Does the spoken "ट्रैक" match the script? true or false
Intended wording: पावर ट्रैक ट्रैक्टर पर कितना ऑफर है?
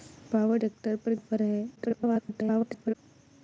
false